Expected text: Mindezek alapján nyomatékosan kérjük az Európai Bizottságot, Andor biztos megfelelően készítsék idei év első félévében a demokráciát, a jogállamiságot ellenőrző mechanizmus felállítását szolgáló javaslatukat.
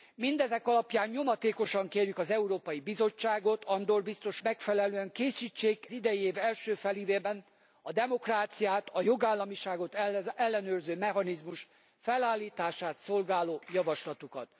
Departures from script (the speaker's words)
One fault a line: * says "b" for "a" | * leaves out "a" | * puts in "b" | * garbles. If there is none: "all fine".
all fine